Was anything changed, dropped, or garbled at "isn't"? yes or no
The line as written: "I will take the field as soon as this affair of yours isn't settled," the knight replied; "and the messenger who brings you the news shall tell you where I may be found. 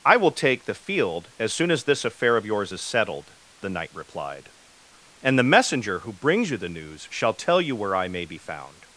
yes